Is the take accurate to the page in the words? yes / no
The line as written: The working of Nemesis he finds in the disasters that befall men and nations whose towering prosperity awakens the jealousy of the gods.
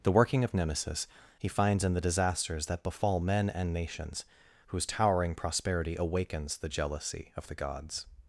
yes